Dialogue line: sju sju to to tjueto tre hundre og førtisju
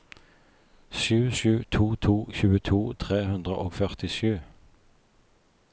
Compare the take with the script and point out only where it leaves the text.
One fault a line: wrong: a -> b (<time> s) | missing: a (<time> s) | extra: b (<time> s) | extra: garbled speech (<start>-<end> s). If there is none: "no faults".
no faults